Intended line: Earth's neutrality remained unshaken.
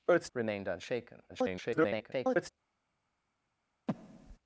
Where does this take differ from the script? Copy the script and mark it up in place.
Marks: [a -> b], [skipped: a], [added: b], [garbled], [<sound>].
Earth's [skipped: neutrality] remained unshaken. [garbled] [breath]